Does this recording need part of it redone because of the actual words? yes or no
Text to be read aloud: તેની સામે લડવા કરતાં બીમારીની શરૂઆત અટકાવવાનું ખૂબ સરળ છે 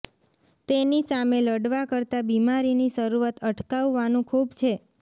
yes